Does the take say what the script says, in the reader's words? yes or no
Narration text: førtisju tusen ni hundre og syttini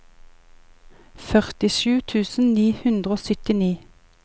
yes